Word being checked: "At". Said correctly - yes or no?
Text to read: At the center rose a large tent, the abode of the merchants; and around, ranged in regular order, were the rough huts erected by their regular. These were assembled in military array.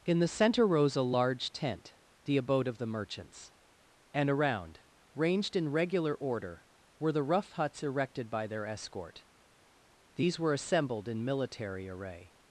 no